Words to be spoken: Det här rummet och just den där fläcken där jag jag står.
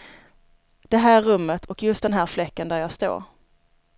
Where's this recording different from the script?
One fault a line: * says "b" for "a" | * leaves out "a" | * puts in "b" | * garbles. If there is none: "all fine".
* says "här" for "där"
* leaves out "jag"